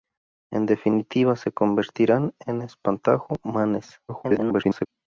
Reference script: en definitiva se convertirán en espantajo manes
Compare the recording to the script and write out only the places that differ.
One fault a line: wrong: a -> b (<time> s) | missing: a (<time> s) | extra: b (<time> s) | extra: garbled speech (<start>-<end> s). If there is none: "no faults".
extra: garbled speech (4.1-4.9 s)